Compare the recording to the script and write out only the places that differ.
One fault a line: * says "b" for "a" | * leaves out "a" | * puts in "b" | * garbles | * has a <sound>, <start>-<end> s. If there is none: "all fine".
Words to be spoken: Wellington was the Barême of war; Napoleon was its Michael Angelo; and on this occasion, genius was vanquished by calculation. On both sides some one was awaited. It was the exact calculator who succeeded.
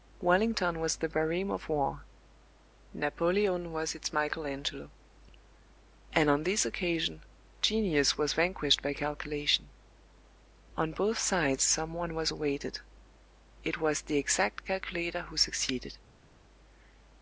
all fine